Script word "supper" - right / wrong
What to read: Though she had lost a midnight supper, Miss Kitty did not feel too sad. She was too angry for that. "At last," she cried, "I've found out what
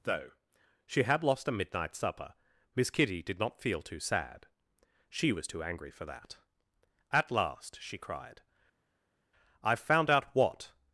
right